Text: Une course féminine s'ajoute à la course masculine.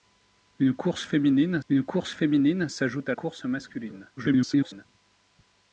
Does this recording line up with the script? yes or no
no